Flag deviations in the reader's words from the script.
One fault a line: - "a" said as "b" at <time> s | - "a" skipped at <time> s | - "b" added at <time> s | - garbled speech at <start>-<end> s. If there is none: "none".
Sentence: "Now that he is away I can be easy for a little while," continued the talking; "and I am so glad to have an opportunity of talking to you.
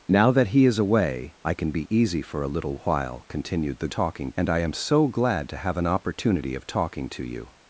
none